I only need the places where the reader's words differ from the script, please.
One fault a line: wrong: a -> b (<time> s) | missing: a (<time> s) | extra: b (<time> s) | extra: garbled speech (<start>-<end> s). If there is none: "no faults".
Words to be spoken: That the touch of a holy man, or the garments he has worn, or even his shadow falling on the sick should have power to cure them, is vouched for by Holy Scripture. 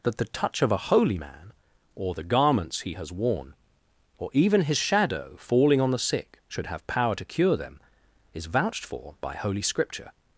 no faults